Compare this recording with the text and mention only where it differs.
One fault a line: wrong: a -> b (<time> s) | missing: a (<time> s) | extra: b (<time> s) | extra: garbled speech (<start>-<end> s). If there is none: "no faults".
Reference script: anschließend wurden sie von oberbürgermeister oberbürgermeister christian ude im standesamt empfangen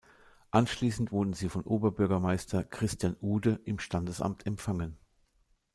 missing: oberbürgermeister (2.6 s)